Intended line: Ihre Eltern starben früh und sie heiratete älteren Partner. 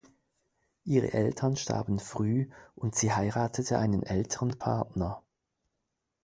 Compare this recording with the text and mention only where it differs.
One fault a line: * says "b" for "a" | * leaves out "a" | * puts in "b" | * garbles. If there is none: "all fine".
* puts in "einen"